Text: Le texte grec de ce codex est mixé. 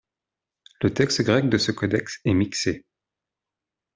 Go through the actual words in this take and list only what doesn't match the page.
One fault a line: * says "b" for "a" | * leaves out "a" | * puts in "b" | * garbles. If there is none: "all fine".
all fine